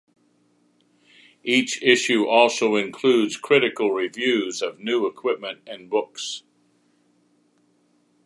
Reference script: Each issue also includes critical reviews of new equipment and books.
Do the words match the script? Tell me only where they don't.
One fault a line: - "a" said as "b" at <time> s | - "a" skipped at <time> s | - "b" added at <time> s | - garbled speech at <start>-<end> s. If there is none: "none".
none